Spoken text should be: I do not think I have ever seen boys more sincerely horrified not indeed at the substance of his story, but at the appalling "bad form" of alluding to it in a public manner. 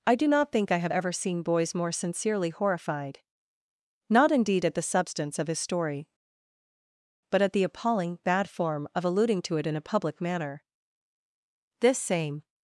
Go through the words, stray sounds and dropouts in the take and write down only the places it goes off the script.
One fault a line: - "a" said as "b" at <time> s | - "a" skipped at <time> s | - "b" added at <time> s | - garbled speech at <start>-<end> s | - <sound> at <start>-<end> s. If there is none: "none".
- "This same" added at 11.8 s